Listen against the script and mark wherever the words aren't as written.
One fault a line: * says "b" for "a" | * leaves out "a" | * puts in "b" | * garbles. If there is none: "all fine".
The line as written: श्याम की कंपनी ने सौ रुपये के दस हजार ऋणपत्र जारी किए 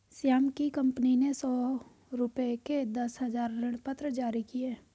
all fine